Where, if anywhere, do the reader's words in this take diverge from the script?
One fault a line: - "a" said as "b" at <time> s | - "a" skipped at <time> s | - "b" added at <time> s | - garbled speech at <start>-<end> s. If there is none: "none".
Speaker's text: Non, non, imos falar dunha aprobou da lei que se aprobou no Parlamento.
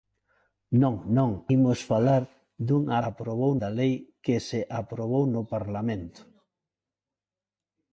none